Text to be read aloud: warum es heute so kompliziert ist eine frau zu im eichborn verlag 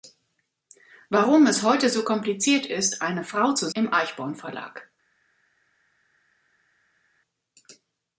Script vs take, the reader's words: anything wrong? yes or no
no